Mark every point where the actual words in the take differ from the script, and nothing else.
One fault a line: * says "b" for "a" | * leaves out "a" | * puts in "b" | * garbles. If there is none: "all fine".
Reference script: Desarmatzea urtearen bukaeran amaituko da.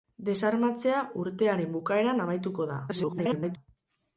* garbles